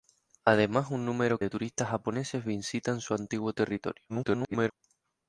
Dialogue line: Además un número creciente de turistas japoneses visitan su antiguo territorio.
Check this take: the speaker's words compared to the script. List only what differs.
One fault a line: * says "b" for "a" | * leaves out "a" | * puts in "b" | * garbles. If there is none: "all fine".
* leaves out "creciente"
* garbles